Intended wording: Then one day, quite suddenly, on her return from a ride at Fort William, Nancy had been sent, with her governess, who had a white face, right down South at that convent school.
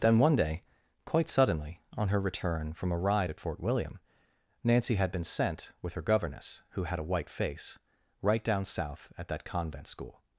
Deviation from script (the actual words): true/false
false